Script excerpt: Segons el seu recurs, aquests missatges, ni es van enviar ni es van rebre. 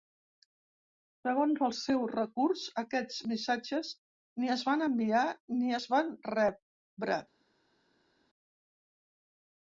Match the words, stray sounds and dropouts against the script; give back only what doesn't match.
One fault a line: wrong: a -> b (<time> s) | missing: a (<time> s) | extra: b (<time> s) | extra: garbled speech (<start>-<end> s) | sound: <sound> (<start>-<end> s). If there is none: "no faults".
no faults